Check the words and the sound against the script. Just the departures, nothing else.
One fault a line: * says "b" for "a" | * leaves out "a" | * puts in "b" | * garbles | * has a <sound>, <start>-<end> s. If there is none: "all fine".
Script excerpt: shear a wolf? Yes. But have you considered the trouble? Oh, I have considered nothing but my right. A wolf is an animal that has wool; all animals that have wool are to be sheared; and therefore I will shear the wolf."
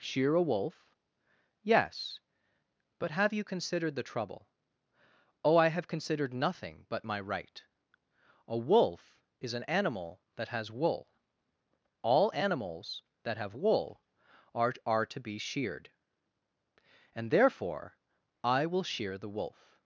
* puts in "are"